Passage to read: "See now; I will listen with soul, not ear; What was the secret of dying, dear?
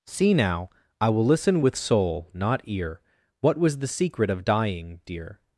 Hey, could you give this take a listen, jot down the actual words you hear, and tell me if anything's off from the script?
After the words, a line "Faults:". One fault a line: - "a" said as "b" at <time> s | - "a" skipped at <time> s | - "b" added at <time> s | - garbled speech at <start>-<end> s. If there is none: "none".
"See now; I will listen with soul, not ear; What was the secret of dying, dear?
Faults:
none